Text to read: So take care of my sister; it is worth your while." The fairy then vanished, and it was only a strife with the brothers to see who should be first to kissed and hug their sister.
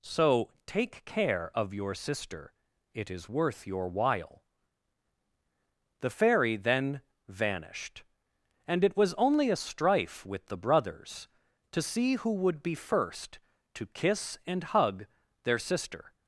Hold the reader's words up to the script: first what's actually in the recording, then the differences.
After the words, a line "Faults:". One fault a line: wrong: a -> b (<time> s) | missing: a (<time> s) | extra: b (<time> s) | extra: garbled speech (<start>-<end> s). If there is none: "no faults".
So take care of your sister; it is worth your while." The fairy then vanished, and it was only a strife with the brothers to see who would be first to kiss and hug their sister.
Faults:
wrong: my -> your (1.7 s)
wrong: should -> would (12.3 s)
wrong: kissed -> kiss (13.9 s)